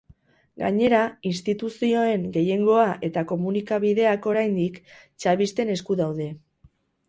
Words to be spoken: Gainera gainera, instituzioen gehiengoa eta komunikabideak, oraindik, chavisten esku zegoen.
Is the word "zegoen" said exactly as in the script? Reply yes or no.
no